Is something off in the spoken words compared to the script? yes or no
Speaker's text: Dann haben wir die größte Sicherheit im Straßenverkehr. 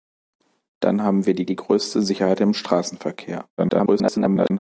yes